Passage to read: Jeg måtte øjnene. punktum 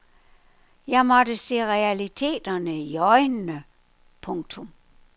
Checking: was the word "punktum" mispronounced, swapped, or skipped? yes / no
no